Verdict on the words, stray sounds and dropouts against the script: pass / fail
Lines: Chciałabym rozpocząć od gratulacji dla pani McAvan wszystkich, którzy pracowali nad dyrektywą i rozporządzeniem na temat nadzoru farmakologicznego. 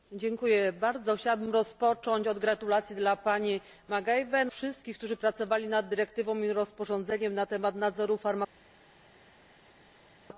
pass